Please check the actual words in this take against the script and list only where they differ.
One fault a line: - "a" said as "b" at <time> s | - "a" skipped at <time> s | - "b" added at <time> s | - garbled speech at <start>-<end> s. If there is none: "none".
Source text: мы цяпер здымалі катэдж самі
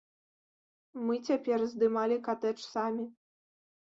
none